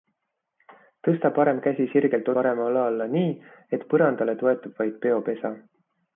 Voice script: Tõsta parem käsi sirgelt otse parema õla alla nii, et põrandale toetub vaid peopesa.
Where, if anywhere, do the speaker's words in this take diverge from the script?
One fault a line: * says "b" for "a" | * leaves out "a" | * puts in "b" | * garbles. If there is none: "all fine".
* leaves out "otse"